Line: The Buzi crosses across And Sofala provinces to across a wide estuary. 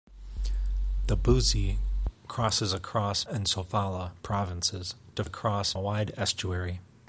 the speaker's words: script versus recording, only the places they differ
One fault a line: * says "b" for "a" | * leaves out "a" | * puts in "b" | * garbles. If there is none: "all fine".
all fine